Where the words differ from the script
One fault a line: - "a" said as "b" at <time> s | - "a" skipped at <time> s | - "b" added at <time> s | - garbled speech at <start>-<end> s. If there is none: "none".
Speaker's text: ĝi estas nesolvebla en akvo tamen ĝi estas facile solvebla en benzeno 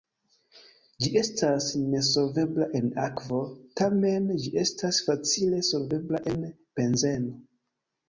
none